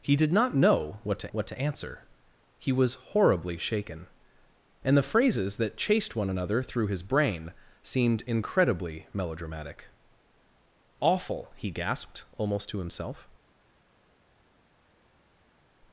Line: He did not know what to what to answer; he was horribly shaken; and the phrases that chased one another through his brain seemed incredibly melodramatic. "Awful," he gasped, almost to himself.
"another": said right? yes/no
yes